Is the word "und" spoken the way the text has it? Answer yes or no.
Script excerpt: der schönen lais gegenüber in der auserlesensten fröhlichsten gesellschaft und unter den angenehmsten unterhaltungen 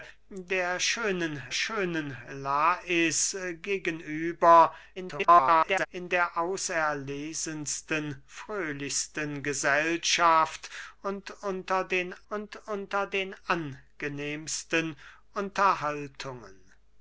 yes